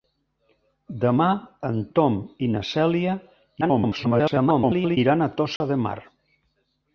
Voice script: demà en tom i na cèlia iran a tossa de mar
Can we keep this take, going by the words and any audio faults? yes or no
no